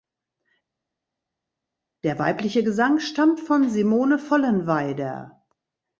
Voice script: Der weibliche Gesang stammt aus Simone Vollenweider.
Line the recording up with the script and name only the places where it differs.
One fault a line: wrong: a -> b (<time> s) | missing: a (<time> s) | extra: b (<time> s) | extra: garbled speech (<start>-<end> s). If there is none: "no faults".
wrong: aus -> von (3.4 s)